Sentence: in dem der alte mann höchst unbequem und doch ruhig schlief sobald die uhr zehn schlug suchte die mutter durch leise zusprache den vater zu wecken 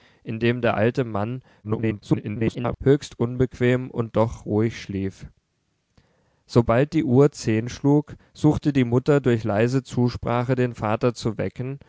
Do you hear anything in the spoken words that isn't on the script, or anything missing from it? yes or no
yes